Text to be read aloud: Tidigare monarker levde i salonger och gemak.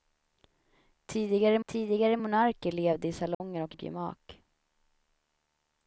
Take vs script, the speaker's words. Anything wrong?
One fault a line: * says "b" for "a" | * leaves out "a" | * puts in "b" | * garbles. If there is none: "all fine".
* puts in "tidigare"
* puts in "och"